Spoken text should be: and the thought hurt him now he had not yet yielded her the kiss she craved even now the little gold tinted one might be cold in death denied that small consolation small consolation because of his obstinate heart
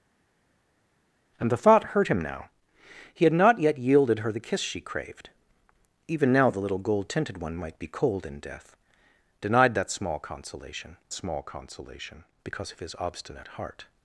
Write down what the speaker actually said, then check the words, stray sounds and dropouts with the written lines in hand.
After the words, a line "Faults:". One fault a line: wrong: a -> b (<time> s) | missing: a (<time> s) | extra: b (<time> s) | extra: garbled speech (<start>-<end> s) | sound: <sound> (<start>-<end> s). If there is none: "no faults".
and the thought hurt him now he had not yet yielded her the kiss she craved even now the little gold tinted one might be cold in death denied that small consolation small consolation because of his obstinate heart
Faults:
no faults